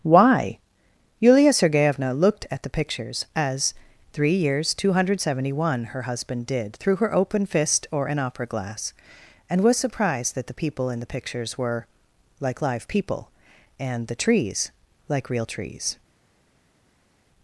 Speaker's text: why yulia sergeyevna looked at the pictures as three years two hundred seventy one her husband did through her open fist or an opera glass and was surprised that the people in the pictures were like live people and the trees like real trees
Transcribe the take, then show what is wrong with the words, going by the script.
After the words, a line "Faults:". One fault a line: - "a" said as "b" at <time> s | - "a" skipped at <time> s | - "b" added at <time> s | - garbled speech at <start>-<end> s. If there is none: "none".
why yulia sergeyevna looked at the pictures as three years two hundred seventy one her husband did through her open fist or an opera glass and was surprised that the people in the pictures were like live people and the trees like real trees
Faults:
none